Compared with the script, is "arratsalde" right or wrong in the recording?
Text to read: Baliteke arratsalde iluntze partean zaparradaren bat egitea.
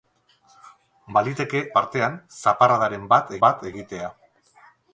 wrong